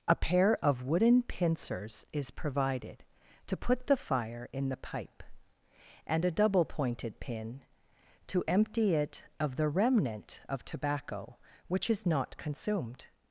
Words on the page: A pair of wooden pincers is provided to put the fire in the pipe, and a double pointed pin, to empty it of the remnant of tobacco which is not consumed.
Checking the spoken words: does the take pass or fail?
pass